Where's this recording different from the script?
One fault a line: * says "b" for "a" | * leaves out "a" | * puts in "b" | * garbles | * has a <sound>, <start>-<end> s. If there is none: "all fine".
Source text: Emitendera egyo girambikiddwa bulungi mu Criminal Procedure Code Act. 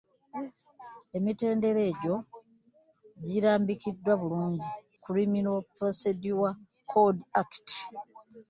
* leaves out "mu"